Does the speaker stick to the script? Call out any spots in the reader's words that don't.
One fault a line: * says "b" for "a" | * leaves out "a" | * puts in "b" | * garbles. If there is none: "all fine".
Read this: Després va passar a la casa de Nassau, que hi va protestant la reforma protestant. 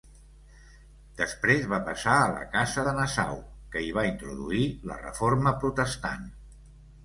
* says "introduir" for "protestant"